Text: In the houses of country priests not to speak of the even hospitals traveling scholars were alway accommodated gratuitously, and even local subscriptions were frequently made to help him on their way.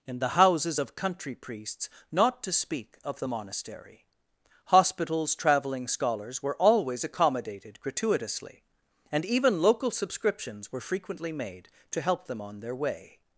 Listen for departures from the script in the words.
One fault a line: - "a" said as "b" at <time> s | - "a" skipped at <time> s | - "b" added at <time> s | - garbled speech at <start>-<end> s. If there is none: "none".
- "even" said as "monastery" at 3.3 s
- "alway" said as "always" at 6.6 s
- "him" said as "them" at 12.3 s